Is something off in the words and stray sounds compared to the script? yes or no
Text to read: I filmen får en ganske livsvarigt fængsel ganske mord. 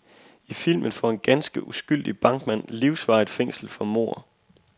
yes